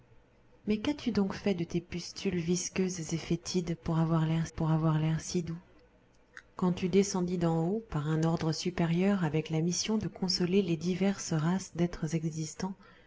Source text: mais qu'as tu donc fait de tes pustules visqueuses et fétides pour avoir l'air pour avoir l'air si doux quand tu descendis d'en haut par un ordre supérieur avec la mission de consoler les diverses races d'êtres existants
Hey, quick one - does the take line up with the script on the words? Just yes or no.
yes